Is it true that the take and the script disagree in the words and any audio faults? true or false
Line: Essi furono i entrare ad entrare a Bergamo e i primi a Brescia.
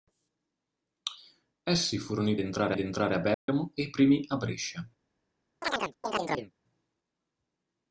true